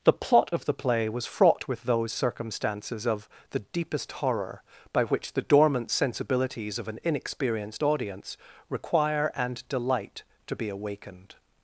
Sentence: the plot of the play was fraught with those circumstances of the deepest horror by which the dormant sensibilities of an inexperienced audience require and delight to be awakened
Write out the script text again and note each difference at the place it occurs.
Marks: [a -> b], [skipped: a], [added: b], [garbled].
the plot of the play was fraught with those circumstances of the deepest horror by which the dormant sensibilities of an inexperienced audience require and delight to be awakened